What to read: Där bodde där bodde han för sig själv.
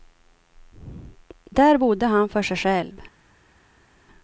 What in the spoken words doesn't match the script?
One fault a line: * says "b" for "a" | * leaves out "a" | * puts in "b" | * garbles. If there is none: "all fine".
* leaves out "där bodde"